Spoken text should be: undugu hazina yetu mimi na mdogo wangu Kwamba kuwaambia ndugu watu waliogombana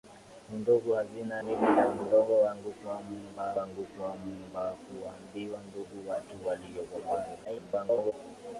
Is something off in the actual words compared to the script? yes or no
yes